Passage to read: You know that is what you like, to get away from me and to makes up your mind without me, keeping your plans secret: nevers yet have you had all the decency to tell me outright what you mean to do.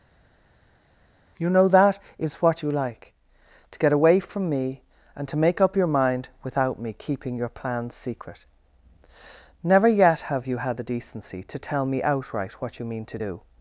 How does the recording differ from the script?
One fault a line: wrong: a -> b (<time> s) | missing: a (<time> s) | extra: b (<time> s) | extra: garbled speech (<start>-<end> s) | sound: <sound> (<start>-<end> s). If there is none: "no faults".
wrong: makes -> make (5.4 s)
wrong: nevers -> never (9.6 s)
missing: all (10.8 s)